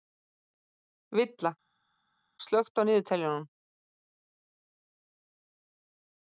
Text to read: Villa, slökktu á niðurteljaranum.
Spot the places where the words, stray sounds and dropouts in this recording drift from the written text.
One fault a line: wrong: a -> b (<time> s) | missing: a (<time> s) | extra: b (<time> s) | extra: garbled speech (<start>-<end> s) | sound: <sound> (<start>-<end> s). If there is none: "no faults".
no faults